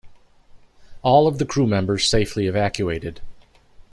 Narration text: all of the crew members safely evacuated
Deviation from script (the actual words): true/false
false